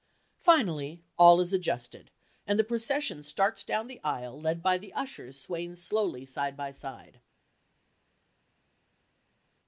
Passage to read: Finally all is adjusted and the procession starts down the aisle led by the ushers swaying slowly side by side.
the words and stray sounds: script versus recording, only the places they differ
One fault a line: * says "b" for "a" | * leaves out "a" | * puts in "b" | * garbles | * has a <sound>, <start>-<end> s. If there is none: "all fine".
all fine